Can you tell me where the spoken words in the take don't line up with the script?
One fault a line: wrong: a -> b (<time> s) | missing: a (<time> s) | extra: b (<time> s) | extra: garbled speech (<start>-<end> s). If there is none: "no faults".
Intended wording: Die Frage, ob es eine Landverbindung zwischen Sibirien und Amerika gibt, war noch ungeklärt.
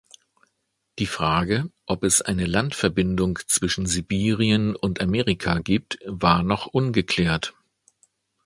no faults